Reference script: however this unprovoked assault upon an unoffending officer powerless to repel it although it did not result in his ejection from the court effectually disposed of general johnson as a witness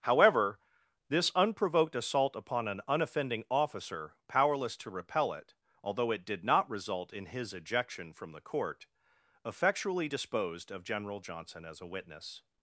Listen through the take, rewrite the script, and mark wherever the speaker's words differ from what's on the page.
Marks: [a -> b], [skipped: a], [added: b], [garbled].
however this unprovoked assault upon an unoffending officer powerless to repel it although it did not result in his ejection from the court effectually disposed of general johnson as a witness